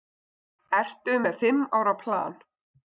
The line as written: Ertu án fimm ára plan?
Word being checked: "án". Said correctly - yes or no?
no